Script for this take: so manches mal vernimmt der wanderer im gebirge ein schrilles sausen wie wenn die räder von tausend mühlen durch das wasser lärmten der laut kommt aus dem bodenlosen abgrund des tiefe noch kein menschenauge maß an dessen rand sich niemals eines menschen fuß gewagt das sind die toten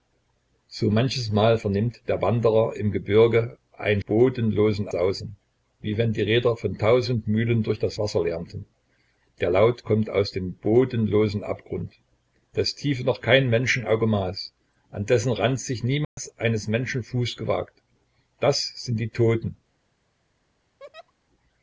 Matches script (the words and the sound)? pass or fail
fail